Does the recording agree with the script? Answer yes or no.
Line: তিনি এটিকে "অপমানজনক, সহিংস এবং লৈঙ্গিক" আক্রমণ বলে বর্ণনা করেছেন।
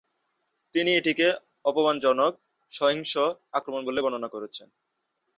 no